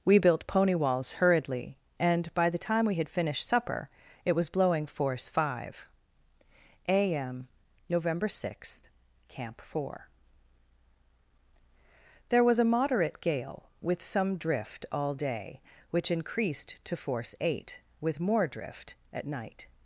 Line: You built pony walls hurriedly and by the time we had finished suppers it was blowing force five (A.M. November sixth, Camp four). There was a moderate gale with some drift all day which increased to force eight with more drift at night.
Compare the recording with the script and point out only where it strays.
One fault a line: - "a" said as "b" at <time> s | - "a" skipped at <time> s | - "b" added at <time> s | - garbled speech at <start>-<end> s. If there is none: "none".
- "You" said as "We" at 0.0 s
- "suppers" said as "supper" at 3.5 s